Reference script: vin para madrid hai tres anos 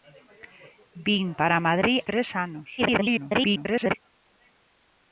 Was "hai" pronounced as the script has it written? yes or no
no